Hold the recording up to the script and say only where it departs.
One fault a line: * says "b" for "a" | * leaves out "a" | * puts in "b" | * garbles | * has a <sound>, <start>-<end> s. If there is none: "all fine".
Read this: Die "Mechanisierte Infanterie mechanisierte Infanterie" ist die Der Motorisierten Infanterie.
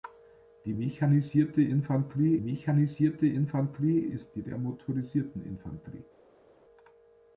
all fine